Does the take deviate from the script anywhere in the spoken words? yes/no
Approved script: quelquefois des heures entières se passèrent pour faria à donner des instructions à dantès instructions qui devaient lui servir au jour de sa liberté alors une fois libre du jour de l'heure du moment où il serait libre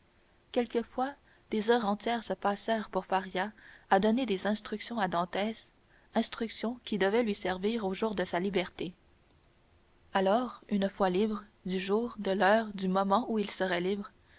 no